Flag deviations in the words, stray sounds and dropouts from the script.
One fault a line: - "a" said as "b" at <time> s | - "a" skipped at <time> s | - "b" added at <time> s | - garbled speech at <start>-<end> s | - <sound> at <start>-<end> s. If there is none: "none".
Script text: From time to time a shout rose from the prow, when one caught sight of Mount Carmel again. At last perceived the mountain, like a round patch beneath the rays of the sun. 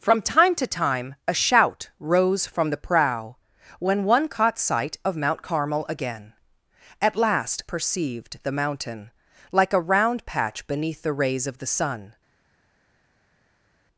none